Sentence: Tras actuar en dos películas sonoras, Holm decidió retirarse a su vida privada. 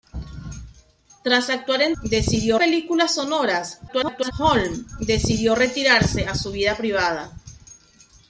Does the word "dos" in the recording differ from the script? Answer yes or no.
yes